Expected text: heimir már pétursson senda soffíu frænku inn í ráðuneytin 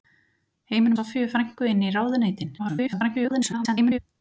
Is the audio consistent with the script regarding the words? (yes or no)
no